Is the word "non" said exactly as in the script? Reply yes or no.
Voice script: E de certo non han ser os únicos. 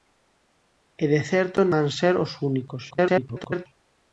no